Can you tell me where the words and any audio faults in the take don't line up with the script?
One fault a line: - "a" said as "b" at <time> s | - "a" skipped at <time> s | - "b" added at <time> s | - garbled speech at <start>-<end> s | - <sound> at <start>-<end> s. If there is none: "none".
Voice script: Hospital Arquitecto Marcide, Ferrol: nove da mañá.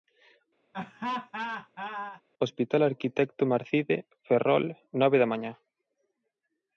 - laugh at 0.7-2.2 s